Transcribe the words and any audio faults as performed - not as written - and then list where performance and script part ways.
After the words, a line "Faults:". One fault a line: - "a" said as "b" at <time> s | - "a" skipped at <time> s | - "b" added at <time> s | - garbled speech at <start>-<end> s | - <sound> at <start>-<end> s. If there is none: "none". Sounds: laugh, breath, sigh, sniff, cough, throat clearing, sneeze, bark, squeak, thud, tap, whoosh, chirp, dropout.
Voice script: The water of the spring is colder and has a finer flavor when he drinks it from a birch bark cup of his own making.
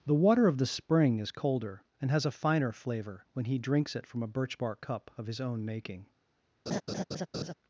The water of the spring is colder and has a finer flavor when he drinks it from a birch bark cup of his own making.
Faults:
- laugh at 6.7-7.5 s